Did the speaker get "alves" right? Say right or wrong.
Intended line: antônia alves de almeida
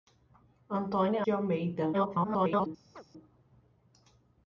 wrong